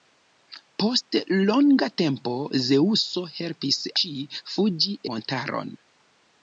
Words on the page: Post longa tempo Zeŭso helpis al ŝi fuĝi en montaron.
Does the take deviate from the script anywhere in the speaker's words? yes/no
yes